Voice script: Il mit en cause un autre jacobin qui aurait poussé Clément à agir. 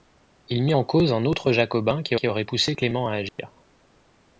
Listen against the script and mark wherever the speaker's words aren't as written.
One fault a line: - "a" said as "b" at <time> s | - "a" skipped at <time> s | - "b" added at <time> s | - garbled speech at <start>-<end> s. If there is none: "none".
- "qui" added at 2.2 s